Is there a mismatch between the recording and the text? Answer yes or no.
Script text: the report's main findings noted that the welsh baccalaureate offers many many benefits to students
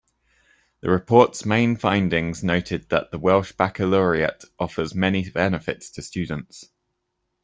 yes